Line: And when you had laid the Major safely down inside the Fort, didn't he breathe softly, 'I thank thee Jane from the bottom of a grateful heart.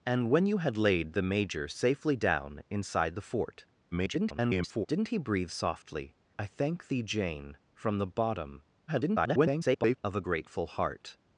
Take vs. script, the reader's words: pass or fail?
fail